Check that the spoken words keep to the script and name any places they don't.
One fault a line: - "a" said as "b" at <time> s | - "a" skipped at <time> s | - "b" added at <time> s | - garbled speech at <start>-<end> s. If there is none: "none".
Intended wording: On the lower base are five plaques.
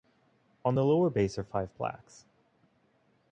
none